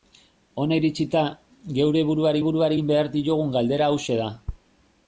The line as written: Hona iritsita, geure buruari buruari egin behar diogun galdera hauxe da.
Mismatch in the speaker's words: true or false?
false